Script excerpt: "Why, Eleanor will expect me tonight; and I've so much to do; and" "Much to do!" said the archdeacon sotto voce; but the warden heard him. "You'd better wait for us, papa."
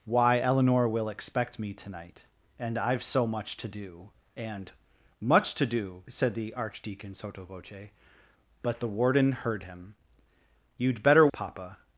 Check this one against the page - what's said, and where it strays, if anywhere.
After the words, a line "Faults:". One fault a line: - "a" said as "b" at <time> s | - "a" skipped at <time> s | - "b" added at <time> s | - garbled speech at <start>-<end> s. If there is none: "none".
"Why, Eleanor will expect me tonight; and I've so much to do; and" "Much to do!" said the archdeacon sotto voce; but the warden heard him. "You'd better papa."
Faults:
- "wait for us" skipped at 11.3 s